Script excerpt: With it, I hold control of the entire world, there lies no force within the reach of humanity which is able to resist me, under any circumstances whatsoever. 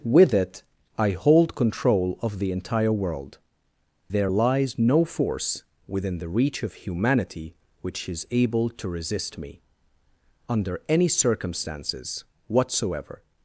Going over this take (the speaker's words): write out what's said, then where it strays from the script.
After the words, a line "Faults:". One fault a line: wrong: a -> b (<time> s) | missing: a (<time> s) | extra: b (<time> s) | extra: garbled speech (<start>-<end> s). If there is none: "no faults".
With it, I hold control of the entire world, there lies no force within the reach of humanity which is able to resist me, under any circumstances whatsoever.
Faults:
no faults